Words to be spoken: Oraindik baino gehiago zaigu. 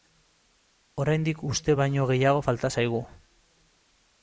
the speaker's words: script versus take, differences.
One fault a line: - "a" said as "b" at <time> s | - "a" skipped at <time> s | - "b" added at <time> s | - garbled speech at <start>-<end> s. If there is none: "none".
- "uste" added at 1.5 s
- "falta" added at 2.5 s